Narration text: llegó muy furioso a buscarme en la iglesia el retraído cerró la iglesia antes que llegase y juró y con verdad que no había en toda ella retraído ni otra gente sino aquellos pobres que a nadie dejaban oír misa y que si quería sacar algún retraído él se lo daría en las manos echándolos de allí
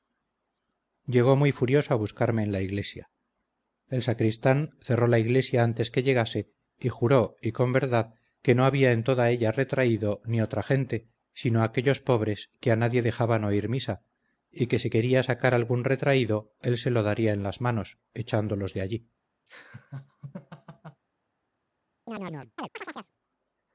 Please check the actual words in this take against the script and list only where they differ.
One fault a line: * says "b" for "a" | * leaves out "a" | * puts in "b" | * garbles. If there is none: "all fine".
* says "sacristán" for "retraído"